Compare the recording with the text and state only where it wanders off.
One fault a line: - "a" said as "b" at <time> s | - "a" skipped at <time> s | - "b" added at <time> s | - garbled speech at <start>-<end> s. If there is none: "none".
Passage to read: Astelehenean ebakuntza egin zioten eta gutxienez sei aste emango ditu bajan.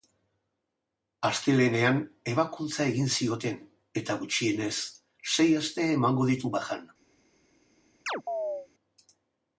none